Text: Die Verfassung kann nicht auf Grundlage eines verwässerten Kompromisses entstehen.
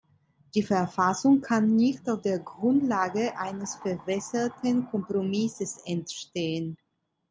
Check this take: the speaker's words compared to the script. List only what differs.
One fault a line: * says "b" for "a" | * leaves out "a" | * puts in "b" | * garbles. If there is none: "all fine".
* puts in "der"